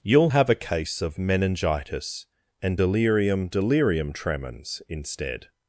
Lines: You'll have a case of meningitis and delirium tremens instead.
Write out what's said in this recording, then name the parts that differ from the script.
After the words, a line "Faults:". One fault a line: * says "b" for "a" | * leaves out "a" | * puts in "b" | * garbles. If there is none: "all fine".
You'll have a case of meningitis and delirium delirium tremens instead.
Faults:
* puts in "delirium"